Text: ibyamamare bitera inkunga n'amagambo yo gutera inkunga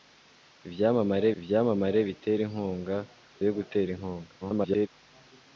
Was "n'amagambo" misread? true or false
true